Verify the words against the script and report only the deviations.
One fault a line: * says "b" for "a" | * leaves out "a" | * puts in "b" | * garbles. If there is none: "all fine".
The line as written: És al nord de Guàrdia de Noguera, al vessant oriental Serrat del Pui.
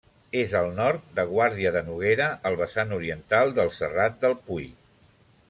* puts in "del"